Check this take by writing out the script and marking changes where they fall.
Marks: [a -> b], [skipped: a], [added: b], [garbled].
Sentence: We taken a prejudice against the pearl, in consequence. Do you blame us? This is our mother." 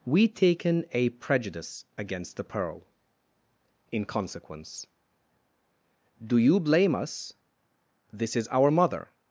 We taken a prejudice against the pearl, in consequence. Do you blame us? This is our mother."